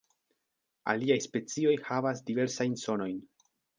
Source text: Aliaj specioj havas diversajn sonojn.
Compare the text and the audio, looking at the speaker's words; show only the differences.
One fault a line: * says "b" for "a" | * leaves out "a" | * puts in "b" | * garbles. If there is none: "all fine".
all fine